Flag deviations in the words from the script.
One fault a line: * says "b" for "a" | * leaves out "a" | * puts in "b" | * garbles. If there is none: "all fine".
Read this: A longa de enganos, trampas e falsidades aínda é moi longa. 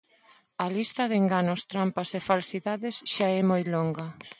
* says "lista" for "longa"
* says "xa" for "aínda"